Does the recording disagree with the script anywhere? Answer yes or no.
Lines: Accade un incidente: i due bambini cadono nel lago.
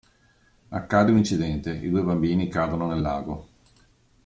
no